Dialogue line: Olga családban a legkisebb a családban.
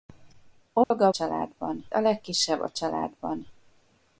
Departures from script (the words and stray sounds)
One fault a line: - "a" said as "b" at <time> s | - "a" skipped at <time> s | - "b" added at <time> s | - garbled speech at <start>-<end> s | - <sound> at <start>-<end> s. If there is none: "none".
- dropout at 0.8-0.9 s